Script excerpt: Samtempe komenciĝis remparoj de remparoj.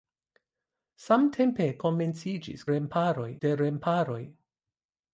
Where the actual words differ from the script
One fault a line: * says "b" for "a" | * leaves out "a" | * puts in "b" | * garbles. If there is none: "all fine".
all fine